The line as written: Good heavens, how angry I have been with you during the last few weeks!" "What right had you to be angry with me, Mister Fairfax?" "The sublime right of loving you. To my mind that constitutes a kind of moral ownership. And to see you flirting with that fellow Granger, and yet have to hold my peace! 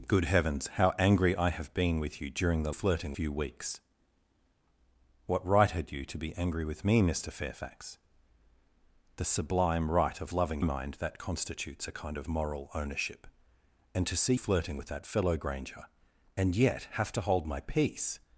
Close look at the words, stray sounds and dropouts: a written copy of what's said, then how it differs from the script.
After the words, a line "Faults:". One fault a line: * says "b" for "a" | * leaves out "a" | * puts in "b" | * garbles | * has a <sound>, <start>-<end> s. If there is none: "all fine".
Good heavens, how angry I have been with you during the flirting few weeks!" "What right had you to be angry with me, Mister Fairfax?" "The sublime right of loving mind that constitutes a kind of moral ownership. And to see flirting with that fellow Granger, and yet have to hold my peace!
Faults:
* says "flirting" for "last"
* leaves out "you To my"
* leaves out "you"